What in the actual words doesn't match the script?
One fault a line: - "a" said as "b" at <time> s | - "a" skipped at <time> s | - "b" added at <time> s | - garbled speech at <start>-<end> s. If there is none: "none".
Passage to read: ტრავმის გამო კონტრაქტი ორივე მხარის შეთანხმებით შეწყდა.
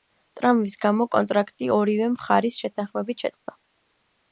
none